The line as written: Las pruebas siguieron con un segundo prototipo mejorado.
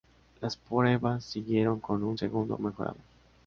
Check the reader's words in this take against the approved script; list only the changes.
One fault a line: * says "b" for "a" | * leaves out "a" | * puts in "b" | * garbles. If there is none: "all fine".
* leaves out "prototipo"